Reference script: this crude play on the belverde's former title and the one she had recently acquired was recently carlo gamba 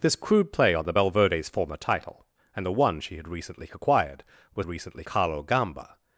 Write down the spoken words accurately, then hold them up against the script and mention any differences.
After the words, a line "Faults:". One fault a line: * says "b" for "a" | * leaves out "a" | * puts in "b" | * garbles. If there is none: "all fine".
this crude play on the belverde's former title and the one she had recently acquired was recently carlo gamba
Faults:
all fine